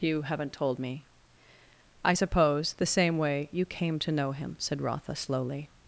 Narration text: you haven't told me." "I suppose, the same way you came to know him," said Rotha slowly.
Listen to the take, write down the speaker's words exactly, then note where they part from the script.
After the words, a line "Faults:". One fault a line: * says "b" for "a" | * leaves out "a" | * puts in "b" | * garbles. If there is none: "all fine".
you haven't told me." "I suppose, the same way you came to know him," said Rotha slowly.
Faults:
all fine